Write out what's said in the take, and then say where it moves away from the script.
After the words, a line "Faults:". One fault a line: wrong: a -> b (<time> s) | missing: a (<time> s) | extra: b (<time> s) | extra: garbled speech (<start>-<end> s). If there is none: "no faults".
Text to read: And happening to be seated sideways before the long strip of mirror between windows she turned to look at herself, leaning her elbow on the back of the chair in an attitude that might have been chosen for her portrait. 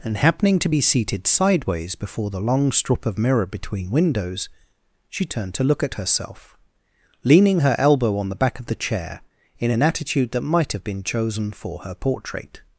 And happening to be seated sideways before the long strip of mirror between windows she turned to look at herself, leaning her elbow on the back of the chair in an attitude that might have been chosen for her portrait.
Faults:
no faults